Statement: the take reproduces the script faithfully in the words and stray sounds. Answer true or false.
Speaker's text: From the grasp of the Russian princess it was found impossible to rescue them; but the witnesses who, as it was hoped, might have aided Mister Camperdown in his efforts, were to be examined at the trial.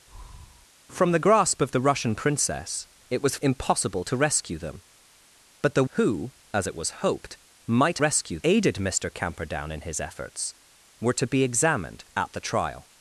false